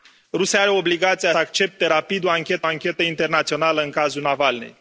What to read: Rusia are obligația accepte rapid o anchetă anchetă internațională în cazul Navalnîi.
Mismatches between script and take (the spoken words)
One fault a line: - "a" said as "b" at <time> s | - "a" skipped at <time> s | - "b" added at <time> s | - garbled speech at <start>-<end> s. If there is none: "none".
none